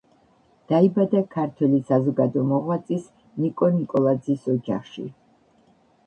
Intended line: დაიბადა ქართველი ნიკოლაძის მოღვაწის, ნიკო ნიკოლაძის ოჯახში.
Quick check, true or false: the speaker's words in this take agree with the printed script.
false